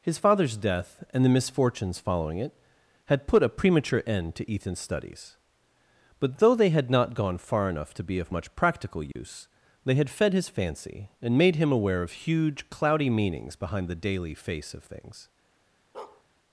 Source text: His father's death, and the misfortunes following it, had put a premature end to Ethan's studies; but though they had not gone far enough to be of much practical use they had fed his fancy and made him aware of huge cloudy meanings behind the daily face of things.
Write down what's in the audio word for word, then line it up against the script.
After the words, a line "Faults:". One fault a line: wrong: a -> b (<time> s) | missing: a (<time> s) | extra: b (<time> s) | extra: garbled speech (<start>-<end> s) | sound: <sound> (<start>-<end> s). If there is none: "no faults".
His father's death, and the misfortunes following it, had put a premature end to Ethan's studies; but though they had not gone far enough to be of much practical use they had fed his fancy and made him aware of huge cloudy meanings behind the daily face of things.
Faults:
sound: dropout (9.1-9.2 s)
sound: bark (15.9-16.2 s)